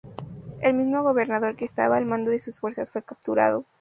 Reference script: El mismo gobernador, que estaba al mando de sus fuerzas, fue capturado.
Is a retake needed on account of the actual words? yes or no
no